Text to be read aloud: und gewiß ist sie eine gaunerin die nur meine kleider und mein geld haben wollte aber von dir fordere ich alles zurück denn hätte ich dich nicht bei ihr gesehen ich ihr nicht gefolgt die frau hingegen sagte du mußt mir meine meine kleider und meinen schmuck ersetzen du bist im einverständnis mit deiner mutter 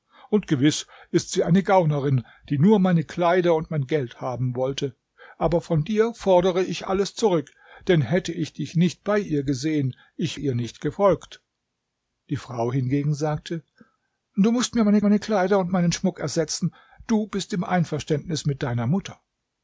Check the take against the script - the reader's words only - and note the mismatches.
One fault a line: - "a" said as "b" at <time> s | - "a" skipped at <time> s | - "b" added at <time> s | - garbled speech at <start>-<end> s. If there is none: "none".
none